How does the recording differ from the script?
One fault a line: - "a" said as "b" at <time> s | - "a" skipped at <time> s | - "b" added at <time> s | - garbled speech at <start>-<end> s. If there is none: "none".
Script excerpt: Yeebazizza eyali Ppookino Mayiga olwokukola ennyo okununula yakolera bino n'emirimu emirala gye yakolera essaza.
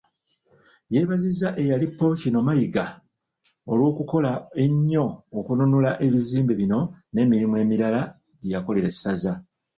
- "yakolera" said as "ebizimbe" at 6.0 s